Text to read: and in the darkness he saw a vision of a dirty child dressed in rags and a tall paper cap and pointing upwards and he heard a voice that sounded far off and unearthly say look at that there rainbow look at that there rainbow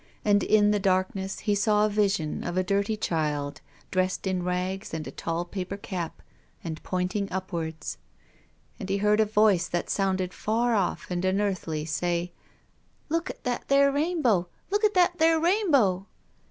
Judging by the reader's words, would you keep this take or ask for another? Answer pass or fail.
pass